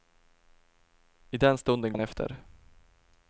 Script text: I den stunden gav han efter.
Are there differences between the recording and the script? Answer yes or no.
yes